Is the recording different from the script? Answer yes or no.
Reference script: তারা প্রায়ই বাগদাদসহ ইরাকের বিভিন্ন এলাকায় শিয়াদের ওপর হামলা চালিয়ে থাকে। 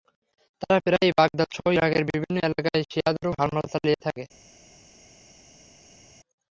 no